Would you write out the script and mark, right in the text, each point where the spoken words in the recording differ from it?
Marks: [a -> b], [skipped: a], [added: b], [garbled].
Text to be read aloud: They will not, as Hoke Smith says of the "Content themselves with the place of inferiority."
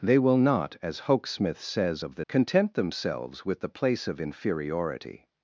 They will not, as Hoke Smith says of the "Content themselves with the place of inferiority."